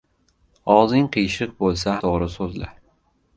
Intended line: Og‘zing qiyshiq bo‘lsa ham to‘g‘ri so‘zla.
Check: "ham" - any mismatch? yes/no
yes